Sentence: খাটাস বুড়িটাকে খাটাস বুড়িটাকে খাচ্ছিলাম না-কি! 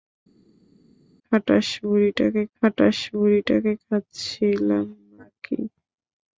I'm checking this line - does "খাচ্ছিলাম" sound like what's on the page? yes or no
yes